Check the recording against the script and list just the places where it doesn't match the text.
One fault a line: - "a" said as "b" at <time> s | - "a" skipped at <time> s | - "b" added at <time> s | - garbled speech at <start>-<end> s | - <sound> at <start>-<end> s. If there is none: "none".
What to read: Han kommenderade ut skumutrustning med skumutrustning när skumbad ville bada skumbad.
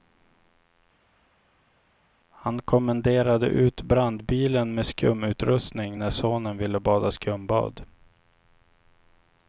- "skumutrustning" said as "brandbilen" at 3.8 s
- "skumbad" said as "sonen" at 6.1 s